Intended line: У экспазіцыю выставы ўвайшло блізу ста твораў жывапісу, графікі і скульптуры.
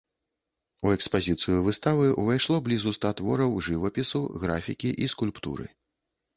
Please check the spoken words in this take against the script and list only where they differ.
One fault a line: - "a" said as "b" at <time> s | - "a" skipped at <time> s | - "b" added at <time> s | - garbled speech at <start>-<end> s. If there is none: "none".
none